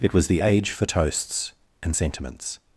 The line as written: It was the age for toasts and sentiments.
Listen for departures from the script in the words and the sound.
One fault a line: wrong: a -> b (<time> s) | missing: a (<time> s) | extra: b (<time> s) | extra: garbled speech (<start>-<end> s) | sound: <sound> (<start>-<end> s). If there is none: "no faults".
no faults